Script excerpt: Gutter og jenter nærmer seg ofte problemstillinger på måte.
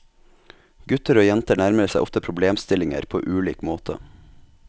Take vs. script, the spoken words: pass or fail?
fail